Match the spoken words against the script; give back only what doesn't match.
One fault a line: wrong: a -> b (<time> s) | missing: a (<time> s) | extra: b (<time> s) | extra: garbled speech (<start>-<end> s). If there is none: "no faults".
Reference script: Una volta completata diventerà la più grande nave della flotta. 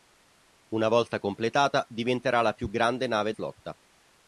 missing: della (3.3 s)